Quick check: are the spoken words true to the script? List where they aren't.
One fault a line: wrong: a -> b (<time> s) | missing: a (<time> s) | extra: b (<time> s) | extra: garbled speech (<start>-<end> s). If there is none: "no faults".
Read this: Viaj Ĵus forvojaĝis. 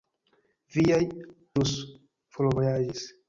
no faults